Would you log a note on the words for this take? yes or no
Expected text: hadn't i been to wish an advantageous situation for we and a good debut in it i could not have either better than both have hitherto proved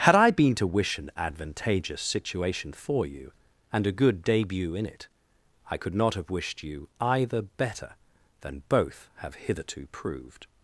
yes